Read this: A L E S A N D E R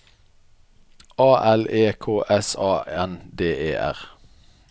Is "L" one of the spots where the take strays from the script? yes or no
no